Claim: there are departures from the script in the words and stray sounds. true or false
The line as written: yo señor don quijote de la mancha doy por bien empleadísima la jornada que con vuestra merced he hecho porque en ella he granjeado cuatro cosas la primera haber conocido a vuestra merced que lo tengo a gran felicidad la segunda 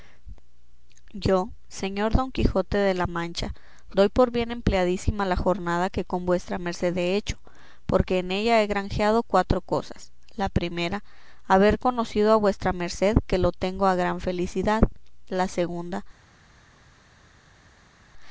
false